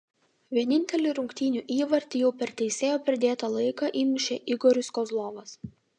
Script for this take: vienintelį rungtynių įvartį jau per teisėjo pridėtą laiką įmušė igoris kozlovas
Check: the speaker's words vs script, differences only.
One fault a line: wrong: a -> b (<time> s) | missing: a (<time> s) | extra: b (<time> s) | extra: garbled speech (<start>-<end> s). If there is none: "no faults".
no faults